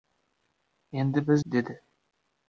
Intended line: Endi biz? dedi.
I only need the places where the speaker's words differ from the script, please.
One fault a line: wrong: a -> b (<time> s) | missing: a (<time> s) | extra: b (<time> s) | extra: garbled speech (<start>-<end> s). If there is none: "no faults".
no faults